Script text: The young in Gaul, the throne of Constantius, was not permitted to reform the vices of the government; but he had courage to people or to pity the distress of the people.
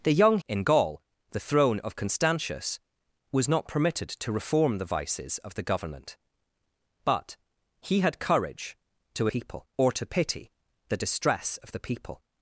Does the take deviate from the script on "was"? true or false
false